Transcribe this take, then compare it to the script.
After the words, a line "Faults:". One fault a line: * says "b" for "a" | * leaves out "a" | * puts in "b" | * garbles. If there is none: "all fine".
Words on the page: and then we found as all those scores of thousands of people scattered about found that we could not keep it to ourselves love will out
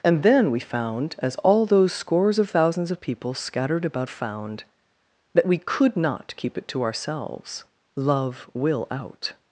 and then we found as all those scores of thousands of people scattered about found that we could not keep it to ourselves love will out
Faults:
all fine